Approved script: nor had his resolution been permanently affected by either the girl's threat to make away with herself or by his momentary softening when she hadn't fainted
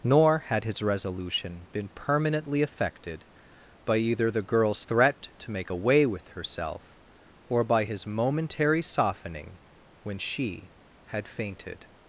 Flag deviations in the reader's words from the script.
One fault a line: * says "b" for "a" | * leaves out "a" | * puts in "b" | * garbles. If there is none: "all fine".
* says "had" for "hadn't"